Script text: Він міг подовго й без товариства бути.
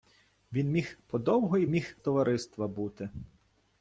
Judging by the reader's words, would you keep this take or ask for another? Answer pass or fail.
fail